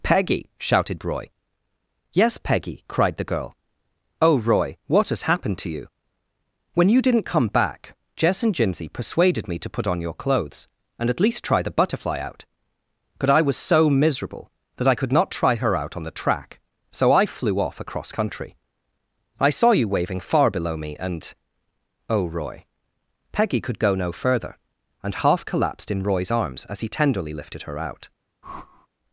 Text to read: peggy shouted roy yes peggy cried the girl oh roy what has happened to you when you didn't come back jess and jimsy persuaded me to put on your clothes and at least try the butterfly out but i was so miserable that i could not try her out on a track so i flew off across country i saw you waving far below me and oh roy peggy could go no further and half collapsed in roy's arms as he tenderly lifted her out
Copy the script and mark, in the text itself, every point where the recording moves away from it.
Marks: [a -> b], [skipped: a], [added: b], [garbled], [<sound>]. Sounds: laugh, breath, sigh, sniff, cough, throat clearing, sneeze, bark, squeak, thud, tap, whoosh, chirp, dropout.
peggy shouted roy yes peggy cried the girl oh roy what has happened to you when you didn't come back jess and jimsy persuaded me to put on your clothes and at least try the butterfly out but i was so miserable that i could not try her out on [a -> the] track so i flew off across country i saw you waving far below me and oh roy peggy could go no further and half collapsed in roy's arms as he tenderly lifted her out [whoosh]